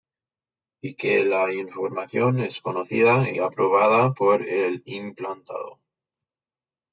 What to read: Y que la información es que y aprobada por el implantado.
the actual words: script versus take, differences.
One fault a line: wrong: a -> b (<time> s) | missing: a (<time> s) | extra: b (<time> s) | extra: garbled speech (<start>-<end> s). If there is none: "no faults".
wrong: que -> conocida (2.6 s)